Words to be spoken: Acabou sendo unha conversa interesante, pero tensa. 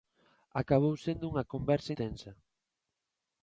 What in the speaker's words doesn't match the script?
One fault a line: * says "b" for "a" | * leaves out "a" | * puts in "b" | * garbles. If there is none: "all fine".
* leaves out "interesante pero"